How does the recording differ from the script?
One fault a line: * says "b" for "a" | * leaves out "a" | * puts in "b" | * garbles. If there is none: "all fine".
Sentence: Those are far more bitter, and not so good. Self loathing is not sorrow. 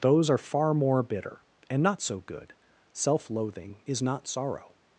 all fine